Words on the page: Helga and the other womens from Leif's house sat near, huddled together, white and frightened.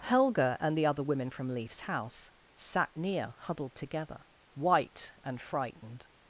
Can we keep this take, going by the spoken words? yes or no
no